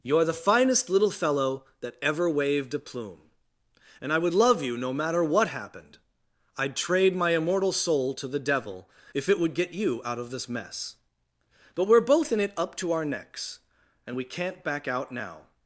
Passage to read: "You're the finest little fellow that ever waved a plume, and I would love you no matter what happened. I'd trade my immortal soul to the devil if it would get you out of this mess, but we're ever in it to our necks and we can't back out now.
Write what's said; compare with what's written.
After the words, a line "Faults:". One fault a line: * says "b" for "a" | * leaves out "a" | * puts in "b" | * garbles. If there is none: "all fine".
"You're the finest little fellow that ever waved a plume, and I would love you no matter what happened. I'd trade my immortal soul to the devil if it would get you out of this mess, but we're both in it up to our necks and we can't back out now.
Faults:
* says "both" for "ever"
* puts in "up"